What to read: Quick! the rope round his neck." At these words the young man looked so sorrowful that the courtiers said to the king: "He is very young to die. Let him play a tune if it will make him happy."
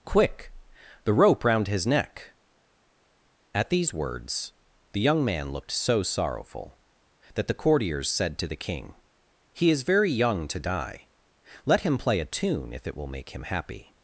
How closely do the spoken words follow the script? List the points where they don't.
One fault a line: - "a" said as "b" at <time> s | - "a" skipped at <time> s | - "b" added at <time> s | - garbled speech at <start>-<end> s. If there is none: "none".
none